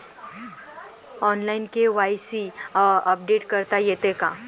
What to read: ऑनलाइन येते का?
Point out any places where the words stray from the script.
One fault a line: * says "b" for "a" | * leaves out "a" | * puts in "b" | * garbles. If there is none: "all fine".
* puts in "के.वाय.सी अपडेट करता"